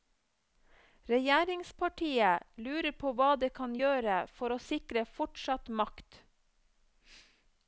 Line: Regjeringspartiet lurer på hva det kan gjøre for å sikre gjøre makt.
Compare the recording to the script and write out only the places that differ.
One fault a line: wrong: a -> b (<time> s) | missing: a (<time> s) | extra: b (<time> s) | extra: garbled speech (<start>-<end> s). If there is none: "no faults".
wrong: gjøre -> fortsatt (5.2 s)